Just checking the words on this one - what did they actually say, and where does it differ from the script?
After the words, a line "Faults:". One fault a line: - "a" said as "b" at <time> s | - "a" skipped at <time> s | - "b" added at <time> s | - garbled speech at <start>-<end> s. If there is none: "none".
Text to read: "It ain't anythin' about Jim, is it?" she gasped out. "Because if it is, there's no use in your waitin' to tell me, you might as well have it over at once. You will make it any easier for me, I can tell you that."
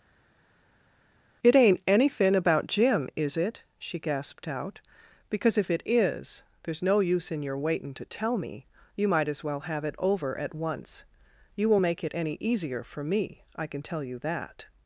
"It ain't anythin' about Jim, is it?" she gasped out. "Because if it is, there's no use in your waitin' to tell me, you might as well have it over at once. You will make it any easier for me, I can tell you that."
Faults:
none